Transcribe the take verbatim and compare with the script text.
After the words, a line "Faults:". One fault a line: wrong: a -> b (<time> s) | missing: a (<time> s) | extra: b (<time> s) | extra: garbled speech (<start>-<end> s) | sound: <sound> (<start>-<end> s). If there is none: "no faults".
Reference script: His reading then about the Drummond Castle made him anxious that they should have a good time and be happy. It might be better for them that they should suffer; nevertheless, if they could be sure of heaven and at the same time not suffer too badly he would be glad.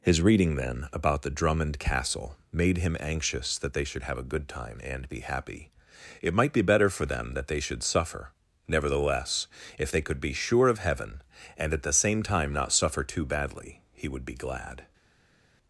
His reading then about the Drummond Castle made him anxious that they should have a good time and be happy. It might be better for them that they should suffer; nevertheless, if they could be sure of heaven and at the same time not suffer too badly he would be glad.
Faults:
no faults